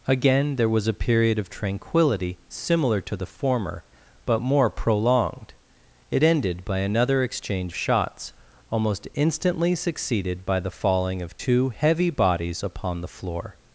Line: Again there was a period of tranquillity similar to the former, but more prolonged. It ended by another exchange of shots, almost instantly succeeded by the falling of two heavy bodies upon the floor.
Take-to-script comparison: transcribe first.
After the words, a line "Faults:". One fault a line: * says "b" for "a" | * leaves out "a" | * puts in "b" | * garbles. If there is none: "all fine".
Again there was a period of tranquillity similar to the former, but more prolonged. It ended by another exchange shots, almost instantly succeeded by the falling of two heavy bodies upon the floor.
Faults:
* leaves out "of"